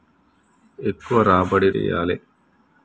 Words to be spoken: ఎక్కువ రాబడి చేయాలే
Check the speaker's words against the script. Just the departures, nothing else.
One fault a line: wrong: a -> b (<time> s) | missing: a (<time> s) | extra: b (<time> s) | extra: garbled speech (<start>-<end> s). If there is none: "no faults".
no faults